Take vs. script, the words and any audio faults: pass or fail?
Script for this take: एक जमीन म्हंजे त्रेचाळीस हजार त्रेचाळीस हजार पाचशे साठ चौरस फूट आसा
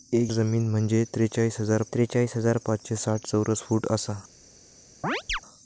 fail